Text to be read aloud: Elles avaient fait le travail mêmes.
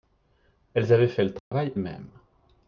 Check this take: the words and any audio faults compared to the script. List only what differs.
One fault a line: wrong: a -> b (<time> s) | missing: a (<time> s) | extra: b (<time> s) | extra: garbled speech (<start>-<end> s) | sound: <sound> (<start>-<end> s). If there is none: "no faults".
sound: dropout (1.4-1.5 s)